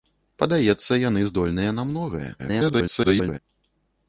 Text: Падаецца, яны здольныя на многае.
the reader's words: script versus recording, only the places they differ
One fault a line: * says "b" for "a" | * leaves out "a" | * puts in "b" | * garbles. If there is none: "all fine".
* garbles